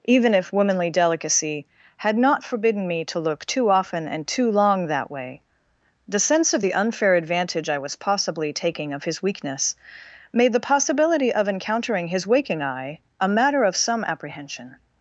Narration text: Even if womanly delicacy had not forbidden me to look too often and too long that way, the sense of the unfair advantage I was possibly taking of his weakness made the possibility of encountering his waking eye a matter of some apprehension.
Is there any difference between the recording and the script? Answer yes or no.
no